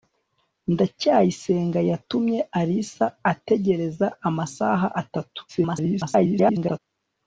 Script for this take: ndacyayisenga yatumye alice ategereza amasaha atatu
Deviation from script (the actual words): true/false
true